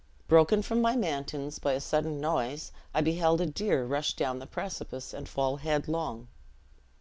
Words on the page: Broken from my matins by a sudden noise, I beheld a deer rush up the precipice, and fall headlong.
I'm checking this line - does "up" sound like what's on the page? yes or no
no